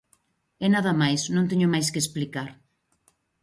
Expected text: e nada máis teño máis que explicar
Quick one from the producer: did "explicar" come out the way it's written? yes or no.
yes